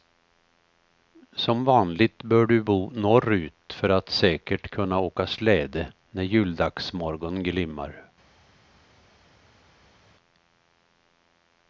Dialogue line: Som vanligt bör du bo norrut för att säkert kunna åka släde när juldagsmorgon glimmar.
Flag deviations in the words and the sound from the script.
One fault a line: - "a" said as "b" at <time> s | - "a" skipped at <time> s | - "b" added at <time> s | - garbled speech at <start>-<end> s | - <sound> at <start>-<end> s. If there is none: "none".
none